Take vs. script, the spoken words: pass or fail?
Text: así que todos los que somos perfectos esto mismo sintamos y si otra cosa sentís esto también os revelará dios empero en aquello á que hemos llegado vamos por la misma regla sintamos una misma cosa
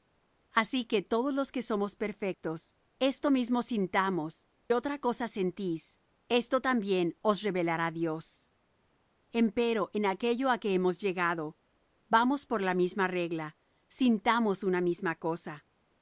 fail